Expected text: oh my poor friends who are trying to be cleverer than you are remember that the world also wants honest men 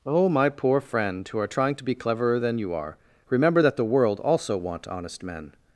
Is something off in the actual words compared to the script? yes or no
yes